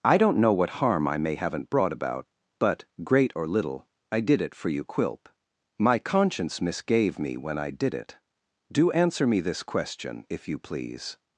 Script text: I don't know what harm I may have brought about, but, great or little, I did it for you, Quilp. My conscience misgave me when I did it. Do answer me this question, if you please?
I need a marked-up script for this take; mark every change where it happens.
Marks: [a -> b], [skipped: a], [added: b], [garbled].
I don't know what harm I may [have -> haven't] brought about, but, great or little, I did it for you, Quilp. My conscience misgave me when I did it. Do answer me this question, if you please?